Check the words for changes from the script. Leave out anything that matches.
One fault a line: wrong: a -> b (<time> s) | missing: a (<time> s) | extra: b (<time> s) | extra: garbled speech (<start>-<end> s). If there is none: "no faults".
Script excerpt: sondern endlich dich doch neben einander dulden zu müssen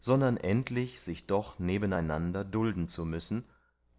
wrong: dich -> sich (1.0 s)